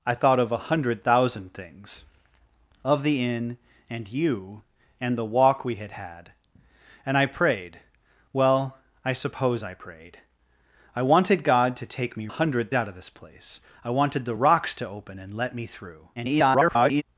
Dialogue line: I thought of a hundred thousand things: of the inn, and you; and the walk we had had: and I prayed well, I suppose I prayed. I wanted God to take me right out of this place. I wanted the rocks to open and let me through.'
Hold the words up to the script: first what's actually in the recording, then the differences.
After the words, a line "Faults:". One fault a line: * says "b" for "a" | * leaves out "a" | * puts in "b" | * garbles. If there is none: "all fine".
I thought of a hundred thousand things: of the inn, and you; and the walk we had had: and I prayed well, I suppose I prayed. I wanted God to take me hundred out of this place. I wanted the rocks to open and let me through.' [garbled]
Faults:
* says "hundred" for "right"
* garbles